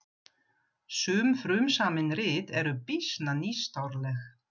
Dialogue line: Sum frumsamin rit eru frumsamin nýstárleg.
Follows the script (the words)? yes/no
no